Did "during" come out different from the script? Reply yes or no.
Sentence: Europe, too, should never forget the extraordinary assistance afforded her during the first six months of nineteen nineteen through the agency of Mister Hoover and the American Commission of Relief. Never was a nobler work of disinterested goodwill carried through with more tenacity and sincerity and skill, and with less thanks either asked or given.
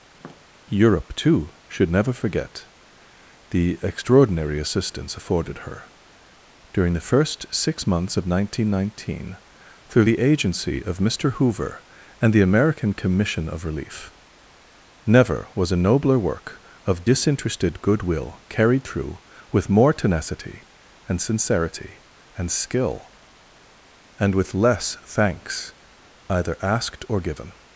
no